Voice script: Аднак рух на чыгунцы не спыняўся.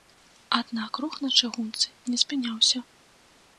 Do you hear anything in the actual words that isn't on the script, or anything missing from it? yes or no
no